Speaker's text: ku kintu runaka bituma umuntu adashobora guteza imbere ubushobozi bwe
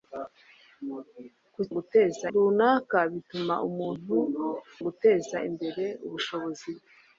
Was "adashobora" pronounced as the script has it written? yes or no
no